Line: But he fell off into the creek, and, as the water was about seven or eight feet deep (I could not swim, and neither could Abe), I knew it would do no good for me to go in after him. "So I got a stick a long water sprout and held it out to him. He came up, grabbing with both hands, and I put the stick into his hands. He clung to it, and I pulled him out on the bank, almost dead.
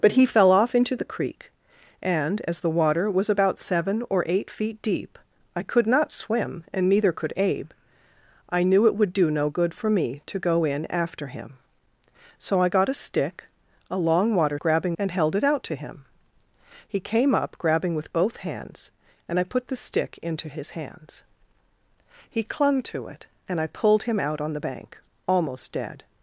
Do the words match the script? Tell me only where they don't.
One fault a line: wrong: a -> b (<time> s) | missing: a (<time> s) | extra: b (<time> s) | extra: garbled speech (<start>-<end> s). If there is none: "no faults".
wrong: sprout -> grabbing (14.6 s)